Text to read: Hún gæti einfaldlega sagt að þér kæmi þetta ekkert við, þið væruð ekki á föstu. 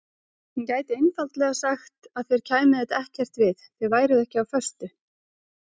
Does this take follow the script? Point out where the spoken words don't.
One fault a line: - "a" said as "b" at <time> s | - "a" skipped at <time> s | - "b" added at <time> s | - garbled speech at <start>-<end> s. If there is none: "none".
none